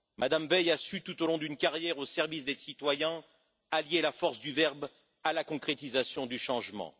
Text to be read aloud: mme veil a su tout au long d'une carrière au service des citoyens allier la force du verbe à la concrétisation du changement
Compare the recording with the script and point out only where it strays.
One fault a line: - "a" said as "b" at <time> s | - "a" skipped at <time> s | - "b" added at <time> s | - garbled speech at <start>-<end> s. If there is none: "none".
none